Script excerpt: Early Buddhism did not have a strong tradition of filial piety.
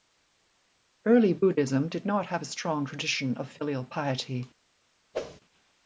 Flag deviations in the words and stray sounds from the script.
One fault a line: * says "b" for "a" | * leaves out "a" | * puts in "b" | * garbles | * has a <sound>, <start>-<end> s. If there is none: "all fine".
* has a whoosh, 5.1-5.4 s